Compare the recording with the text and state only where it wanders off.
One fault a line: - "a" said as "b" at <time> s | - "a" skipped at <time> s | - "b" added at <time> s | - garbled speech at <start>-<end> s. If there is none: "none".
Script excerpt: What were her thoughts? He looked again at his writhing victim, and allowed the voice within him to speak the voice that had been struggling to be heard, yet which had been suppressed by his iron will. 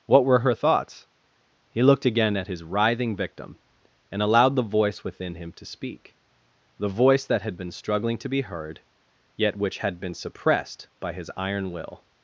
none